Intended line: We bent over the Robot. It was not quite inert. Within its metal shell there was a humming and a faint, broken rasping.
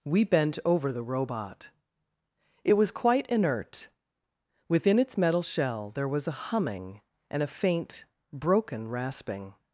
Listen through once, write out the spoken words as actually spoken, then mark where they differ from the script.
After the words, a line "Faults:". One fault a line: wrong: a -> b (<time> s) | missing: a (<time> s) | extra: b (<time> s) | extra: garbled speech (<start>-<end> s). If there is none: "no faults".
We bent over the Robot. It was quite inert. Within its metal shell there was a humming and a faint, broken rasping.
Faults:
missing: not (2.9 s)